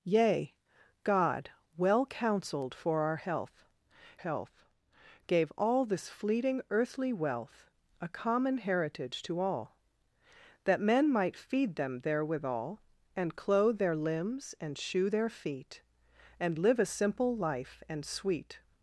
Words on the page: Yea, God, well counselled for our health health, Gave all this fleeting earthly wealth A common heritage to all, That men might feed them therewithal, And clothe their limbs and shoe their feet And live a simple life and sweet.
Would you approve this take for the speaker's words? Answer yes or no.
yes